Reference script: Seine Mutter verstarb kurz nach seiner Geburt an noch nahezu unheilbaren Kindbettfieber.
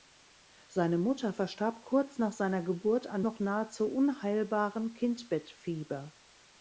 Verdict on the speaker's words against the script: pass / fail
pass